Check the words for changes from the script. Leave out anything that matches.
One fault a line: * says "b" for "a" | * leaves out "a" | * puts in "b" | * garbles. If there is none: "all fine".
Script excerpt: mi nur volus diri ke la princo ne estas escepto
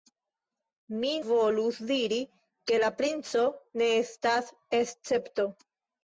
* leaves out "nur"